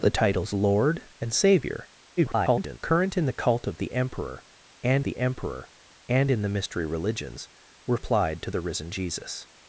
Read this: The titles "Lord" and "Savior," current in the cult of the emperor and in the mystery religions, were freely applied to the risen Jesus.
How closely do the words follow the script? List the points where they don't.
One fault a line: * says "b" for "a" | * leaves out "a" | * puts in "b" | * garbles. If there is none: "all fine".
* garbles
* puts in "the emperor and"
* leaves out "freely"